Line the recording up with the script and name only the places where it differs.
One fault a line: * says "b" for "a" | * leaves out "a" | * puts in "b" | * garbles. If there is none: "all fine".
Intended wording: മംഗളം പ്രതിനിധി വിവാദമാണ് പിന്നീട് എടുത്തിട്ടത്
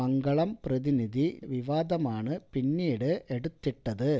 all fine